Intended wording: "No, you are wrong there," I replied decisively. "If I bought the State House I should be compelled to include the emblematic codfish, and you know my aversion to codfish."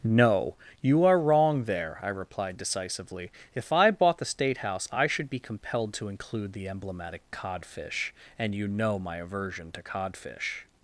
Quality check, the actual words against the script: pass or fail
pass